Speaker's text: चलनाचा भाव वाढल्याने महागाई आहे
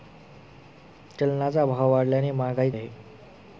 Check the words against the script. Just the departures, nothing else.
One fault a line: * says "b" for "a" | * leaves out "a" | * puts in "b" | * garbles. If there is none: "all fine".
all fine